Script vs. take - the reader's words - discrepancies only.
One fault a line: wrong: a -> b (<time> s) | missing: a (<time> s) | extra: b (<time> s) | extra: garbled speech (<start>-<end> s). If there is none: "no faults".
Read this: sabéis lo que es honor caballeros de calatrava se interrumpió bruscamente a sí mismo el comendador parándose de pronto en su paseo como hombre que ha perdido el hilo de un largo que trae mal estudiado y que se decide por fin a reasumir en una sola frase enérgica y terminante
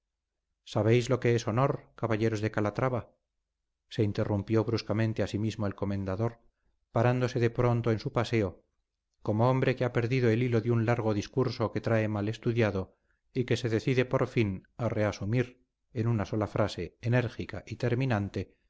extra: discurso (11.1 s)